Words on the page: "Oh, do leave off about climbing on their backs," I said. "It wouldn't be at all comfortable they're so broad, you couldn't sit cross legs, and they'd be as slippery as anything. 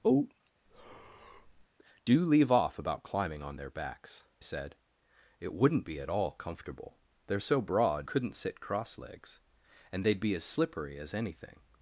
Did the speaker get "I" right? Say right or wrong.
wrong